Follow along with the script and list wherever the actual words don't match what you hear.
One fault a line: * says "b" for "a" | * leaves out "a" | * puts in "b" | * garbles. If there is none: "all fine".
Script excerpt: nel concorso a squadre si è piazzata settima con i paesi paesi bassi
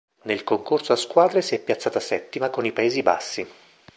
* leaves out "paesi"